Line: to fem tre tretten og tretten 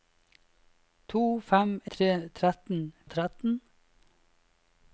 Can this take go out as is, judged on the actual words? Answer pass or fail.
pass